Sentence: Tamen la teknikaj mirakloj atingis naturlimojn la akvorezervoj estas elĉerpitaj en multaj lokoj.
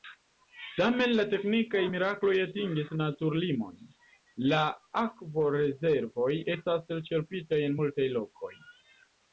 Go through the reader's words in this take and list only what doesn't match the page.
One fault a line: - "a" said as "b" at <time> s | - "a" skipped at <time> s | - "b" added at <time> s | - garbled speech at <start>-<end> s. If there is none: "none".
none